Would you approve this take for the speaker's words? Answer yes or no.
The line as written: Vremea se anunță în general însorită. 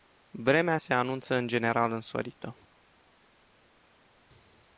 yes